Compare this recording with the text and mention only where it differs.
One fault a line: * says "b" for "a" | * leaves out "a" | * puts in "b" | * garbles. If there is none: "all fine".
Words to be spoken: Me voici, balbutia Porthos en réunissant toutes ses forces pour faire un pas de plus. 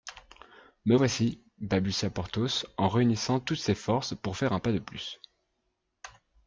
all fine